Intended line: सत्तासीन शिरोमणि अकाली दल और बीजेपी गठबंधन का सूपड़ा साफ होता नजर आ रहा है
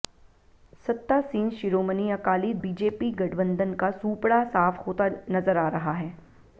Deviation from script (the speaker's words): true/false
true